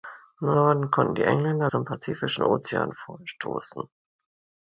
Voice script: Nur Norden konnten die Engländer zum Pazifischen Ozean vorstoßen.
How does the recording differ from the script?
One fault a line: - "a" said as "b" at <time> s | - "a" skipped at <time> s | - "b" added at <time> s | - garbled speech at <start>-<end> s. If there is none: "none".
none